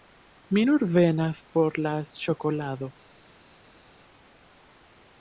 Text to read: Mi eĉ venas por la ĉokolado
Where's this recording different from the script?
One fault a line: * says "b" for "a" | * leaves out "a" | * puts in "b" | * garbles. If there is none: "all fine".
* says "nur" for "eĉ"